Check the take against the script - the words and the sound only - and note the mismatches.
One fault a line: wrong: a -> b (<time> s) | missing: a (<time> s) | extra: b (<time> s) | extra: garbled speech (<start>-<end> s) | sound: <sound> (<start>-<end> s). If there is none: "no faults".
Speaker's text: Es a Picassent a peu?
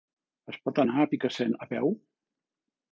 extra: pot anar (0.7 s)